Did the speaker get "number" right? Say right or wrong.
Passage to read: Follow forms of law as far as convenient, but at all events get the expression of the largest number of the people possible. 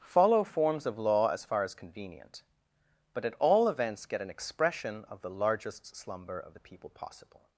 wrong